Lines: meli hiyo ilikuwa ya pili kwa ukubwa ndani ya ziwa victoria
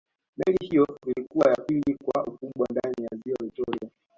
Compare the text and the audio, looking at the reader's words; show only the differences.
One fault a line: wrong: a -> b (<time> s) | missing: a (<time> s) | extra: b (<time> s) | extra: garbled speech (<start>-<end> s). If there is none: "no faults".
no faults